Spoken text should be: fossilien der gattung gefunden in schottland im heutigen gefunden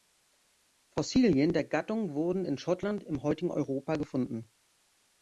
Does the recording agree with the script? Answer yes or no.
no